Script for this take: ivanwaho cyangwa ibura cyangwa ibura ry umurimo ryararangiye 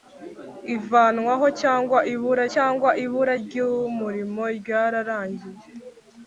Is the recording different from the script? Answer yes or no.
no